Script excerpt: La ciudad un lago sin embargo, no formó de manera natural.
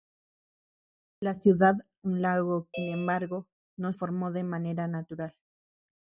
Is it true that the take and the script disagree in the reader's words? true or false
false